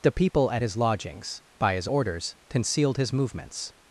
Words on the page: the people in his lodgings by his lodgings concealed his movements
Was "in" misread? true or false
true